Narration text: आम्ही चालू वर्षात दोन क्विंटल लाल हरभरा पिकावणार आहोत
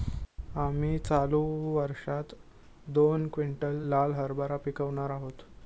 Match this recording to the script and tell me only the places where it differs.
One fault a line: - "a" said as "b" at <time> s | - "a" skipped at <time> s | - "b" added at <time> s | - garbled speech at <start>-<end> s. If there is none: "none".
none